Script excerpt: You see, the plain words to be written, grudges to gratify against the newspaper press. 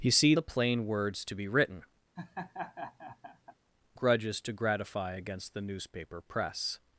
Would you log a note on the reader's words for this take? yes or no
no